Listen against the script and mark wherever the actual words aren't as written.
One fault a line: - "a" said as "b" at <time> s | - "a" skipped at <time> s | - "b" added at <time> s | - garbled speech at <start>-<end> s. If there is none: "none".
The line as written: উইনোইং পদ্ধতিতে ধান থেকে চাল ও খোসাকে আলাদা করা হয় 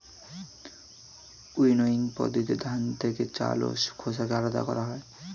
none